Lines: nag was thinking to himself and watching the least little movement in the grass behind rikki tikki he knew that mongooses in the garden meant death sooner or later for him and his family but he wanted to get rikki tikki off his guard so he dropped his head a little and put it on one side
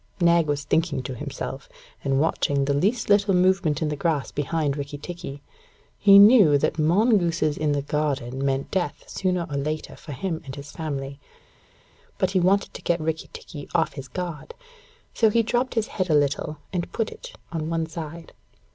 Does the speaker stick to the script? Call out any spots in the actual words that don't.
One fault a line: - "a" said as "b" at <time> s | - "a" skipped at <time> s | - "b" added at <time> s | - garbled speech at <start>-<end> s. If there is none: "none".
none